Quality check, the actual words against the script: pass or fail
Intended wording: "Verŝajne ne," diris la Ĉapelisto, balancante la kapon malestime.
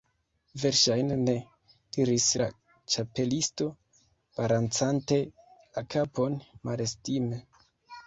pass